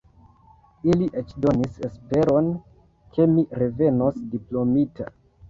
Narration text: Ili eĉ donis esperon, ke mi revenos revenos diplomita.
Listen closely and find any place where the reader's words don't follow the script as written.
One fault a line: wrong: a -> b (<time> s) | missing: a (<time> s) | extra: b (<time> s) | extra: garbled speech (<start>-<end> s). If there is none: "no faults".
missing: revenos (4.2 s)